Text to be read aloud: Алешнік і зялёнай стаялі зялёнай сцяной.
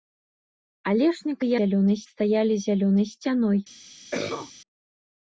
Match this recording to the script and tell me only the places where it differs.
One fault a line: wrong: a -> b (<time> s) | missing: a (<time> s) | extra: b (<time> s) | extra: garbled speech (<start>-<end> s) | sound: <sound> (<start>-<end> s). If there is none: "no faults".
sound: cough (4.1-4.5 s)